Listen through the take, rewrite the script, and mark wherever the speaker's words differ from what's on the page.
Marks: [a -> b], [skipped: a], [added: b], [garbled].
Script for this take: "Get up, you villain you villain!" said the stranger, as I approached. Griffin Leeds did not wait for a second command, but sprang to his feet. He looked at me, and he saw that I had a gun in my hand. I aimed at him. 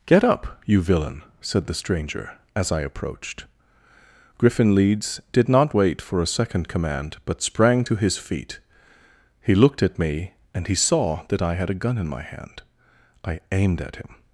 "Get up, you villain [skipped: you villain!"] said the stranger, as I approached. Griffin Leeds did not wait for a second command, but sprang to his feet. He looked at me, and he saw that I had a gun in my hand. I aimed at him.